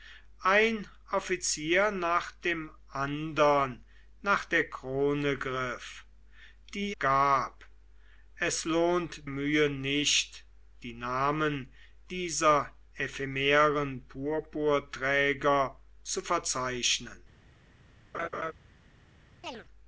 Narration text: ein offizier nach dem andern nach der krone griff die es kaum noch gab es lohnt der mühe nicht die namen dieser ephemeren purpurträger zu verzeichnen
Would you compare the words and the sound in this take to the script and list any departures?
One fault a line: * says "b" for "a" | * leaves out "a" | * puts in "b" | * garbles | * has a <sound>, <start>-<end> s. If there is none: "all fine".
* leaves out "es kaum noch"
* leaves out "der"
* has a laugh, 18.1-18.5 s
* has a chirp, 19.4-19.6 s